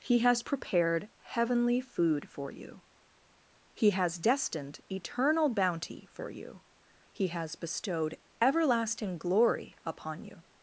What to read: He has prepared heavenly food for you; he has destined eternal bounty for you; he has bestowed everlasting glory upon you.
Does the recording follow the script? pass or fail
pass